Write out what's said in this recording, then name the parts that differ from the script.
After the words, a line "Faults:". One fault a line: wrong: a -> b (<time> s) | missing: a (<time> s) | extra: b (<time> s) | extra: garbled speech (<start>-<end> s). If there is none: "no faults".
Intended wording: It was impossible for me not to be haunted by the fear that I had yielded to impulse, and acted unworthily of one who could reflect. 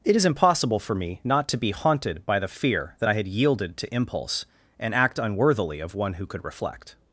It is impossible for me not to be haunted by the fear that I had yielded to impulse, and act unworthily of one who could reflect.
Faults:
wrong: was -> is (0.1 s)
wrong: acted -> act (4.9 s)